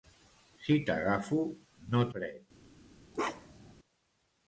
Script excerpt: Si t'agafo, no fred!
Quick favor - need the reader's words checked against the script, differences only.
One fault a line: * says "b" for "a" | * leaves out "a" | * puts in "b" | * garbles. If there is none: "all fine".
all fine